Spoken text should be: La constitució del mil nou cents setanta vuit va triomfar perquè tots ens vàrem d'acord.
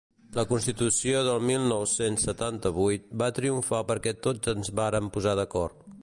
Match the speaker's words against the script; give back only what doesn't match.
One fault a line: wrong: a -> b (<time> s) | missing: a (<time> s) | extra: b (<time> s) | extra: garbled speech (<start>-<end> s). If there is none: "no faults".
extra: posar (5.2 s)